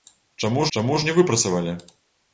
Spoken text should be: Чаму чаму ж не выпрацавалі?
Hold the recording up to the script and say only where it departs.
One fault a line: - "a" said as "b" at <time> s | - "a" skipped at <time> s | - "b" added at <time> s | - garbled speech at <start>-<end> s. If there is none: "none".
none